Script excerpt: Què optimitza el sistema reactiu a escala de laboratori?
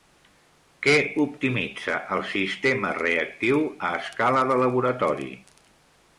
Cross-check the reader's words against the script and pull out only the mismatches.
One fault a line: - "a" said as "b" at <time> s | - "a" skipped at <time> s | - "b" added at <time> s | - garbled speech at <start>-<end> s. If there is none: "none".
none